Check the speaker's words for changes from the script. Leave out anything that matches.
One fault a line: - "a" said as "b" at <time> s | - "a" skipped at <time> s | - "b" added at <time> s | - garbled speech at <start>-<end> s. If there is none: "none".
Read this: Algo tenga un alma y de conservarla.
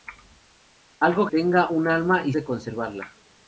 none